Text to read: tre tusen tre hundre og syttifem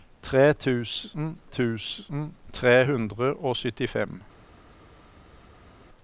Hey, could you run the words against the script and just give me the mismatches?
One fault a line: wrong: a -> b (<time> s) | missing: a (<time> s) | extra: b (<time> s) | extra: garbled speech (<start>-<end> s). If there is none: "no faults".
extra: tusen (1.4 s)